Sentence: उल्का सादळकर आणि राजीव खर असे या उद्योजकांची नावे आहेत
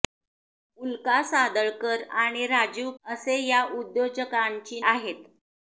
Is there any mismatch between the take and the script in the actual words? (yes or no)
yes